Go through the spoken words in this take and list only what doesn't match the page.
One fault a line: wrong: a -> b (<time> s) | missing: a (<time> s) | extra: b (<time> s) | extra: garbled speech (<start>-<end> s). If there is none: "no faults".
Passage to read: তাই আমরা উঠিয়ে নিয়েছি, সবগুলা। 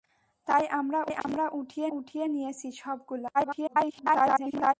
extra: উঠিয়ে (2.0 s)
extra: garbled speech (3.3-4.7 s)